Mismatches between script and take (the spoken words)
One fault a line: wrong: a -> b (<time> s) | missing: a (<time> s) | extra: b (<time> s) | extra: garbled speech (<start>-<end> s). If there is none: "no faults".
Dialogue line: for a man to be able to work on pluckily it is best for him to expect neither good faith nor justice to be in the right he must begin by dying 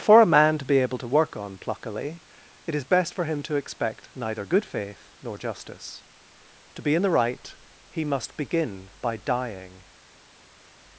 no faults